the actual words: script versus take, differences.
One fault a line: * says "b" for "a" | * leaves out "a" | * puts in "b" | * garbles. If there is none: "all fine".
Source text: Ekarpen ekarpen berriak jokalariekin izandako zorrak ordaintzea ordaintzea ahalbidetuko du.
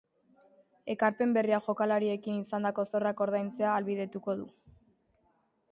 * leaves out "ekarpen"
* leaves out "ordaintzea"